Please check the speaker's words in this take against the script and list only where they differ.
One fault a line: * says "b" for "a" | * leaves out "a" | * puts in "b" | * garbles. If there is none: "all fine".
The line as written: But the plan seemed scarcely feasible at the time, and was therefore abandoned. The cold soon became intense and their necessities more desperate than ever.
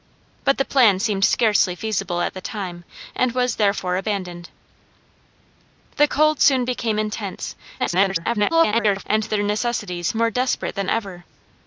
* garbles